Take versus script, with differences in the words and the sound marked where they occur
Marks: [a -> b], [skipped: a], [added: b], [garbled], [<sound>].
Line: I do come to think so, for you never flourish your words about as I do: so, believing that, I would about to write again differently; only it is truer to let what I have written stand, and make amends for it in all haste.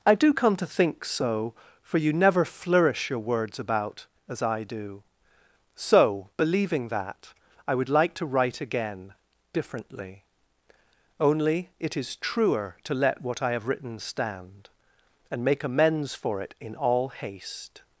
I do come to think so, for you never flourish your words about as I do: so, believing that, I would [about -> like] to write again differently; only it is truer to let what I have written stand, and make amends for it in all haste.